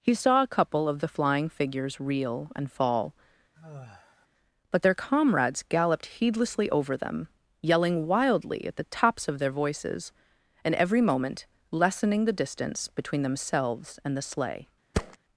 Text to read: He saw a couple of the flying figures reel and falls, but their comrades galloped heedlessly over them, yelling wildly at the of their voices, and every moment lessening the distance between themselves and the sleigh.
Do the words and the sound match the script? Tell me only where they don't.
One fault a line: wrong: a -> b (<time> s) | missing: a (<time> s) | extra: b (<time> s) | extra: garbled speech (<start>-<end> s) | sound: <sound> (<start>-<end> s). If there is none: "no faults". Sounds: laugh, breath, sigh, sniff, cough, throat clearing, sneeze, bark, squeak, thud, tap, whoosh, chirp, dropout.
wrong: falls -> fall (2.7 s)
sound: sigh (3.5-4.3 s)
extra: tops (8.8 s)
sound: thud (14.9-15.2 s)